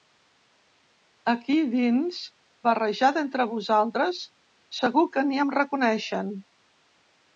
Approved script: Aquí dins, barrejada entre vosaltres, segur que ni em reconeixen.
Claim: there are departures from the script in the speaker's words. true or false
false